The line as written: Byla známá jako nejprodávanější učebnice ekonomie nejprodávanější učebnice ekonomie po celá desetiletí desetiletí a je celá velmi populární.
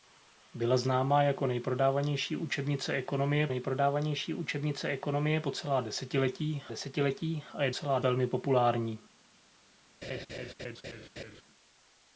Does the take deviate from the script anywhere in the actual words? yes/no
no